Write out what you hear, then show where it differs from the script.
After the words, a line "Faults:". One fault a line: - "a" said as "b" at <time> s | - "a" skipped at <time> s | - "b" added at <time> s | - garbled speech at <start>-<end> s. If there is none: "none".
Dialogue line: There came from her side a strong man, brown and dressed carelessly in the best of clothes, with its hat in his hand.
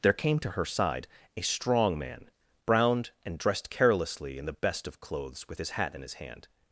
There came to her side a strong man, browned and dressed carelessly in the best of clothes, with his hat in his hand.
Faults:
- "from" said as "to" at 0.4 s
- "brown" said as "browned" at 2.6 s
- "its" said as "his" at 5.6 s